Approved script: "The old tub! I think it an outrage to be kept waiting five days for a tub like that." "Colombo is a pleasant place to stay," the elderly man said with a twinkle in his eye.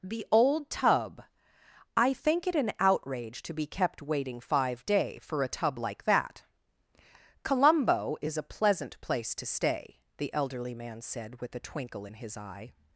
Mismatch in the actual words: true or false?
true